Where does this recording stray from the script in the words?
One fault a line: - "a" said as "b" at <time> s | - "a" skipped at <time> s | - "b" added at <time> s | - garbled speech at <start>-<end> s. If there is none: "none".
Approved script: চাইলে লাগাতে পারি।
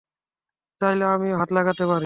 - "আমিও হাত" added at 1.1 s